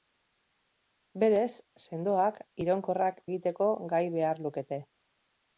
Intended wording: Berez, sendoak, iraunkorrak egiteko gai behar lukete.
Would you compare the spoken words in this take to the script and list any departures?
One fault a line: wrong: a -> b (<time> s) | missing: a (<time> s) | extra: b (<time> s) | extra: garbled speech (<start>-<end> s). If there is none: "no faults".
no faults